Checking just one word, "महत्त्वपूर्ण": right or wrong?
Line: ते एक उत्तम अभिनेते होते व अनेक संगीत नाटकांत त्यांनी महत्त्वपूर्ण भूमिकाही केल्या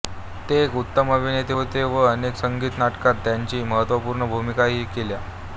right